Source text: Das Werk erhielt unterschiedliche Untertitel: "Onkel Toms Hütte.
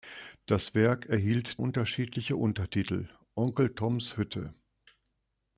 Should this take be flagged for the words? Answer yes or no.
no